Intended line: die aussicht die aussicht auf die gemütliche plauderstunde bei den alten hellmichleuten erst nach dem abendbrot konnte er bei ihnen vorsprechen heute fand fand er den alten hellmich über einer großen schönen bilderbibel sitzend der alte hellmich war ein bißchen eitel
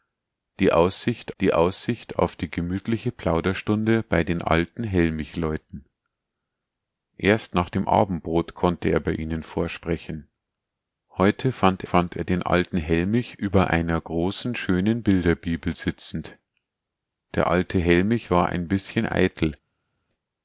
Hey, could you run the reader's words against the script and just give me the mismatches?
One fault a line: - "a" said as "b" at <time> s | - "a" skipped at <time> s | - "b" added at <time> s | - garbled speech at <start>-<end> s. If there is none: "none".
none